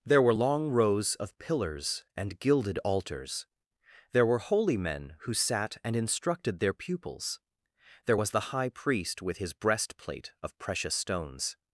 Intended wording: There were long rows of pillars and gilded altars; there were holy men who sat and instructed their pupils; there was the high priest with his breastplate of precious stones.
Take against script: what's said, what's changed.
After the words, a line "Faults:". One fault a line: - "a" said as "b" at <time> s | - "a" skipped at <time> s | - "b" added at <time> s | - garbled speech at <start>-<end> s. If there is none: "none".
There were long rows of pillars and gilded altars; there were holy men who sat and instructed their pupils; there was the high priest with his breastplate of precious stones.
Faults:
none